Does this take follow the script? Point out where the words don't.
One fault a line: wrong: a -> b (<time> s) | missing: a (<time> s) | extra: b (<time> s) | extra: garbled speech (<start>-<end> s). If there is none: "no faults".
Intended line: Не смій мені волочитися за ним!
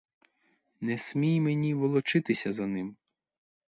no faults